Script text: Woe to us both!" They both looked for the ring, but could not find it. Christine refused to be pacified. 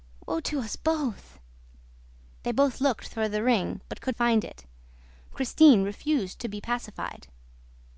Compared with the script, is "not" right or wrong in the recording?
wrong